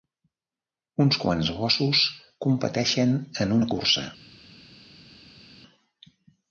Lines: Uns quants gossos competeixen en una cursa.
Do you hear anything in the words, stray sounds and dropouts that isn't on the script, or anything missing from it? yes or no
no